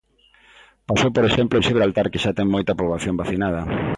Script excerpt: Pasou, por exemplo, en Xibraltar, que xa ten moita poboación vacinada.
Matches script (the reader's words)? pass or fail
pass